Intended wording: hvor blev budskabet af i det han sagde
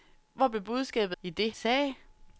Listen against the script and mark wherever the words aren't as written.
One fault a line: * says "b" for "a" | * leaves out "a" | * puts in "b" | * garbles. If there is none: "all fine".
* leaves out "af"
* leaves out "han"